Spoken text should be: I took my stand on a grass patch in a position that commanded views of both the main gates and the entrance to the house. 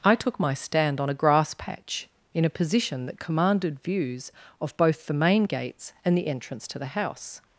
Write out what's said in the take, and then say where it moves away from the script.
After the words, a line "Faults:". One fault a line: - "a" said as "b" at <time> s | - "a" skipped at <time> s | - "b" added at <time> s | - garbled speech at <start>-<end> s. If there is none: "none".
I took my stand on a grass patch in a position that commanded views of both the main gates and the entrance to the house.
Faults:
none